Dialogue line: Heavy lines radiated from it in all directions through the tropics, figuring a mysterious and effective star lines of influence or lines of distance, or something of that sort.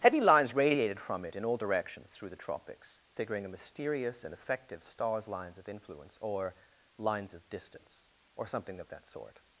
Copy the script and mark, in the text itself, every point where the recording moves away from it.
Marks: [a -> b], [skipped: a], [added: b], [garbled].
Heavy lines radiated from it in all directions through the tropics, figuring a mysterious and effective [star -> stars] lines of influence or lines of distance, or something of that sort.